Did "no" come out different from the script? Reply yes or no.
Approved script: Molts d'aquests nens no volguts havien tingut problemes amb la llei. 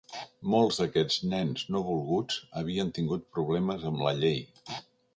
no